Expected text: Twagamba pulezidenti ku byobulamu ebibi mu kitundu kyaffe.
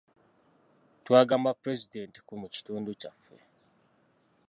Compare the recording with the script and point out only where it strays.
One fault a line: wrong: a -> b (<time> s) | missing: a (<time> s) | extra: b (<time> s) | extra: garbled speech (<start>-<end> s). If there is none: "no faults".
missing: byobulamu ebibi (2.3 s)